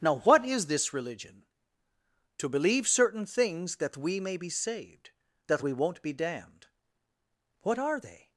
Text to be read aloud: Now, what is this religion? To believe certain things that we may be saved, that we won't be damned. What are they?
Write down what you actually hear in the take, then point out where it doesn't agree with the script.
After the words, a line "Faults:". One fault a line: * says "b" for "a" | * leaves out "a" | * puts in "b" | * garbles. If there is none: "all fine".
Now, what is this religion? To believe certain things that we may be saved, that we won't be damned. What are they?
Faults:
all fine